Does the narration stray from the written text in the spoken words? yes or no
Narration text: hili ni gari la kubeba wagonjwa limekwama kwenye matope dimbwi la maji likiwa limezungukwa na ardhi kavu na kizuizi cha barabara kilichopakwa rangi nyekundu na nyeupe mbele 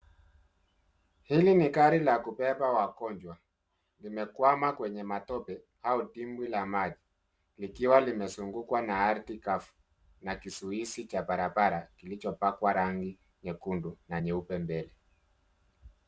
yes